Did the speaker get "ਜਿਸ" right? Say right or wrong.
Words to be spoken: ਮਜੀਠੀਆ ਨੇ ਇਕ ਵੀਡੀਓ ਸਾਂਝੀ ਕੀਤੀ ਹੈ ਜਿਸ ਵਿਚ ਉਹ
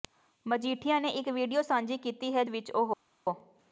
wrong